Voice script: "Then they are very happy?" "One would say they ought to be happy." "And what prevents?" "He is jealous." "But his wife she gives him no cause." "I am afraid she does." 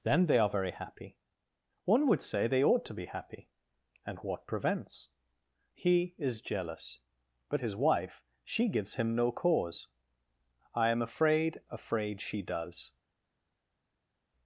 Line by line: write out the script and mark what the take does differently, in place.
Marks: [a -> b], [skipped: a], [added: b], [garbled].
"Then they are very happy?" "One would say they ought to be happy." "And what prevents?" "He is jealous." "But his wife she gives him no cause." "I am afraid [added: afraid] she does."